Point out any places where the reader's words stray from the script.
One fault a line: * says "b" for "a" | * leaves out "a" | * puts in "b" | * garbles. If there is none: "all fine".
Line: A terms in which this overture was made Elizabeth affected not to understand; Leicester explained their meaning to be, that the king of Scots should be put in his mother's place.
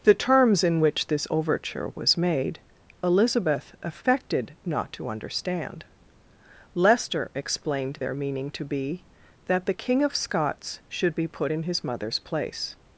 * says "The" for "A"